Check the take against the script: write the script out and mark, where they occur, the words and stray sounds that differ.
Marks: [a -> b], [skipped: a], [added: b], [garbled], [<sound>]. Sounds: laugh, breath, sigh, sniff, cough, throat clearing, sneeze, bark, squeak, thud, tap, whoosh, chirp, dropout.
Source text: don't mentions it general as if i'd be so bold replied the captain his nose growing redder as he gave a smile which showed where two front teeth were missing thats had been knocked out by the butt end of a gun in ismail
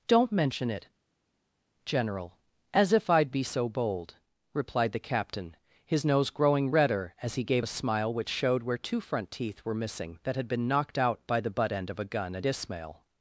don't [mentions -> mention] it general as if i'd be so bold replied the captain his nose growing redder as he gave a smile which showed where two front teeth were missing [thats -> that] had been knocked out by the butt end of a gun [in -> at] ismail